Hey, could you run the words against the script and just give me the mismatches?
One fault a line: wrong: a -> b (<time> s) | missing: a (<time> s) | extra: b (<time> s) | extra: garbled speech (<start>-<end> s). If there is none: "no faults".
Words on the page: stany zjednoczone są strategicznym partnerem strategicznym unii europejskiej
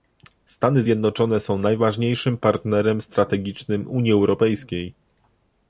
wrong: strategicznym -> najważniejszym (1.6 s)